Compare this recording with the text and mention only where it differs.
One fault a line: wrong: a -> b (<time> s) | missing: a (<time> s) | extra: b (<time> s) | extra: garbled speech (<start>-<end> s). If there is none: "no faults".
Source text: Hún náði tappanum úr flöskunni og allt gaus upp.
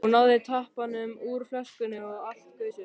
no faults